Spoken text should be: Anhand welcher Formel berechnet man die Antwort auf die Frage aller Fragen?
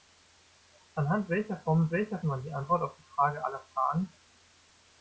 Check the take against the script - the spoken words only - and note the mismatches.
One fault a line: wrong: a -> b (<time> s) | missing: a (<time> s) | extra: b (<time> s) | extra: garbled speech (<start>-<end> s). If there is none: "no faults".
wrong: berechnet -> welcher (1.9 s)